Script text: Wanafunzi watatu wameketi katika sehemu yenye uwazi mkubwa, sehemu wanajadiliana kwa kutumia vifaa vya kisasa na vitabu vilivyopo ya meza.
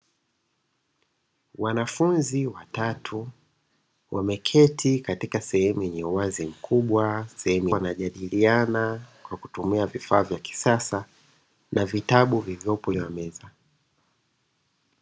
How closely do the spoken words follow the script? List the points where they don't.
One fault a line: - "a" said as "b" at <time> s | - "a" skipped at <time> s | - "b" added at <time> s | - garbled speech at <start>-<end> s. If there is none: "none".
none